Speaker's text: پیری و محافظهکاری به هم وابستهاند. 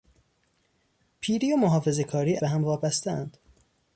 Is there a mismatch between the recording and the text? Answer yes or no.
no